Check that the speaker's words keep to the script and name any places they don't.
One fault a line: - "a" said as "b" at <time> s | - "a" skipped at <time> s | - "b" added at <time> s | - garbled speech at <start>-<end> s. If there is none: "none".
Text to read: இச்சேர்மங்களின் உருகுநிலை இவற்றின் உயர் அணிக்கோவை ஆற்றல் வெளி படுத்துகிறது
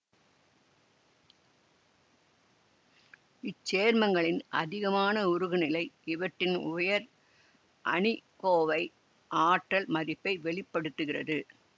- "அதிகமான" added at 4.5 s
- "மதிப்பை" added at 9.9 s